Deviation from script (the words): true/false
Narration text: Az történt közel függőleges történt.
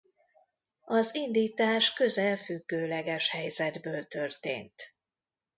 true